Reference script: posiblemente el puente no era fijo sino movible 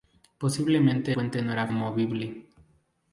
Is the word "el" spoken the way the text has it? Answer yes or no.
no